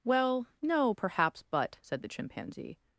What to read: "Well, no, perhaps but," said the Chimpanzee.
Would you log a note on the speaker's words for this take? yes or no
no